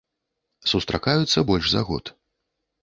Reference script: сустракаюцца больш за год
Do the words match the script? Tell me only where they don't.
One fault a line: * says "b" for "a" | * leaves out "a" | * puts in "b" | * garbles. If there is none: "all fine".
all fine